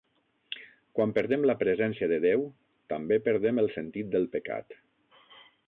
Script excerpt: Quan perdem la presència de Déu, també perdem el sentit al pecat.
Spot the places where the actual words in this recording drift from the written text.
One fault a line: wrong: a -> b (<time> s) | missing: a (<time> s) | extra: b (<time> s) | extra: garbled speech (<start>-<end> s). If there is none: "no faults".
wrong: al -> del (4.2 s)